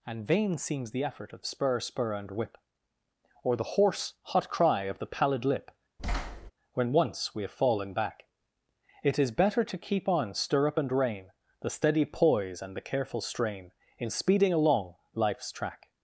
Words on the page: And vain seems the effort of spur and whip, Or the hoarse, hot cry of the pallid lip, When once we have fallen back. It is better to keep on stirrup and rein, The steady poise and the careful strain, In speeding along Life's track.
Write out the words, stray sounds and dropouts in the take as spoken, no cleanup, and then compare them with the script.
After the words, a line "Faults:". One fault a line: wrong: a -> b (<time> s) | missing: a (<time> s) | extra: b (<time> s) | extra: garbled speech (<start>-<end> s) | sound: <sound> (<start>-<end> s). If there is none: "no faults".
And vain seems the effort of spur spur and whip, Or the hoarse, hot cry of the pallid lip, When once we have fallen back. It is better to keep on stirrup and rein, The steady poise and the careful strain, In speeding along Life's track.
Faults:
extra: spur (1.8 s)
sound: thud (6.0-6.5 s)